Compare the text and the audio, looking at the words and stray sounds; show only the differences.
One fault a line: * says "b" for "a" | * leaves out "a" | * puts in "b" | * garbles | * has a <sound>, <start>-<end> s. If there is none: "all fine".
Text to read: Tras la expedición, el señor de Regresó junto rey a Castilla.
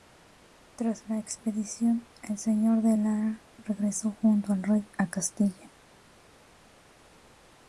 * puts in "Lara"
* puts in "al"